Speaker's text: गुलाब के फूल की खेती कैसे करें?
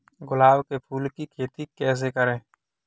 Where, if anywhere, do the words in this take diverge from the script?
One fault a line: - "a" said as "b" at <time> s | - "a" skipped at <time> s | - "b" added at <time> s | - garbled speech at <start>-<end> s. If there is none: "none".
none